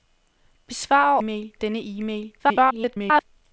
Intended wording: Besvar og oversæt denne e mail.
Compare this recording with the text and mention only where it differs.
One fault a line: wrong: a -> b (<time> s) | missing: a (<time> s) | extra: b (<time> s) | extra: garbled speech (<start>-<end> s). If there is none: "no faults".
wrong: oversæt -> mail (1.2 s)
extra: garbled speech (2.4-3.2 s)